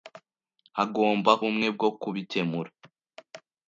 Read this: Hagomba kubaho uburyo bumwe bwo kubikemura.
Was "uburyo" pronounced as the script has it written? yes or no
no